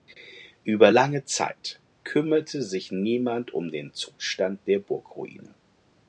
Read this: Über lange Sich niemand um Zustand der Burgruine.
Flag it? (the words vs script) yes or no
yes